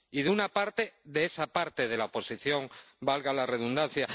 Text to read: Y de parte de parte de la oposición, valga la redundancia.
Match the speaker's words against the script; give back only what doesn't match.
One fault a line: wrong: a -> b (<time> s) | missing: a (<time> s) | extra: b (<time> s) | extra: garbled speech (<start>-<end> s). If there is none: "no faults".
extra: una (0.3 s)
extra: esa (1.3 s)